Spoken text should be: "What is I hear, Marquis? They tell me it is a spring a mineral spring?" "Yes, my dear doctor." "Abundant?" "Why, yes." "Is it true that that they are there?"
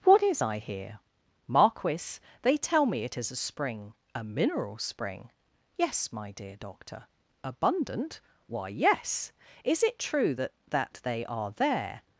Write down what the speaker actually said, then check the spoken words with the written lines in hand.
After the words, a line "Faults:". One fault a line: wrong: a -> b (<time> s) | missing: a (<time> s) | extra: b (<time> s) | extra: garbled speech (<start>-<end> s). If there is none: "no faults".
"What is I hear, Marquis? They tell me it is a spring a mineral spring?" "Yes, my dear doctor." "Abundant?" "Why, yes." "Is it true that that they are there?"
Faults:
no faults